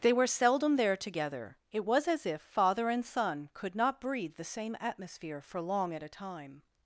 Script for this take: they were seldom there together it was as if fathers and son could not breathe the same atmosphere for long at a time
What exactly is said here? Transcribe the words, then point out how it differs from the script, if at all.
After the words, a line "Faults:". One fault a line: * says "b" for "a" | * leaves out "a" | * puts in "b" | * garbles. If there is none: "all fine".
they were seldom there together it was as if father and son could not breathe the same atmosphere for long at a time
Faults:
* says "father" for "fathers"